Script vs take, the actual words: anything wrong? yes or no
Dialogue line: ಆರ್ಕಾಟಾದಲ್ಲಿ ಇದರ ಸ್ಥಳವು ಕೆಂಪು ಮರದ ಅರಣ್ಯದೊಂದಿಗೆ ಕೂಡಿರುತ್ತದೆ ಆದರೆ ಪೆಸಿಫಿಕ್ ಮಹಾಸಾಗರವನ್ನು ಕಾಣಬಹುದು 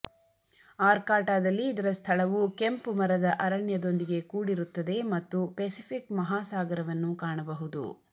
yes